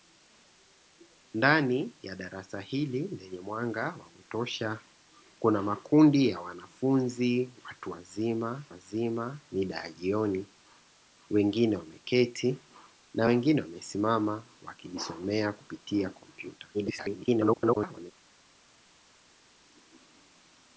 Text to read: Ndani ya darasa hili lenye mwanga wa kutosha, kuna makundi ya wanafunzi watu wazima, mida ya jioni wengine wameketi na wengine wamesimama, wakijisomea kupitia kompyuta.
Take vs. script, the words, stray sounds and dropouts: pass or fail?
fail